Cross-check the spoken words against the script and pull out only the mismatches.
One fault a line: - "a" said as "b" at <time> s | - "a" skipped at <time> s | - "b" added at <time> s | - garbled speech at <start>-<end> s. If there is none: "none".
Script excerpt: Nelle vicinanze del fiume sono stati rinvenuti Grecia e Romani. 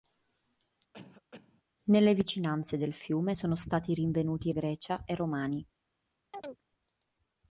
none